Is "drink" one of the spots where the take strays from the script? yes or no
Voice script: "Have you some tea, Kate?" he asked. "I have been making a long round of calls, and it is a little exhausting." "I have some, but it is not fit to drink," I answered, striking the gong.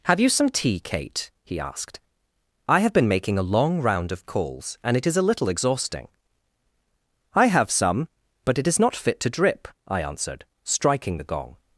yes